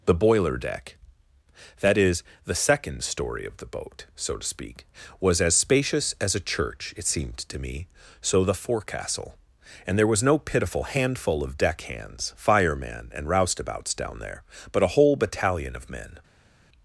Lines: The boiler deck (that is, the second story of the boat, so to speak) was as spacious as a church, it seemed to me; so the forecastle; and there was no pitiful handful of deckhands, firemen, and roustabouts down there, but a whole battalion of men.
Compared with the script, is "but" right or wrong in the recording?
right